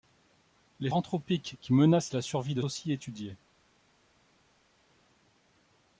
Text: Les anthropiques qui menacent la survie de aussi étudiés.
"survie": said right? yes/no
yes